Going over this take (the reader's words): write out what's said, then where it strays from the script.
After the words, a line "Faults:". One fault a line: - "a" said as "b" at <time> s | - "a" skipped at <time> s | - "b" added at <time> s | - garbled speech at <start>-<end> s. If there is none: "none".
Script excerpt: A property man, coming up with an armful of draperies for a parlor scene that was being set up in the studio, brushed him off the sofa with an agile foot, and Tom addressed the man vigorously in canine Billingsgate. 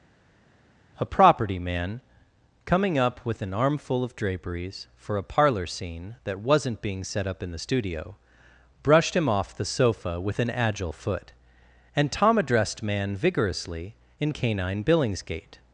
A property man, coming up with an armful of draperies for a parlor scene that wasn't being set up in the studio, brushed him off the sofa with an agile foot, and Tom addressed man vigorously in canine Billingsgate.
Faults:
- "was" said as "wasn't" at 6.4 s
- "the" skipped at 12.8 s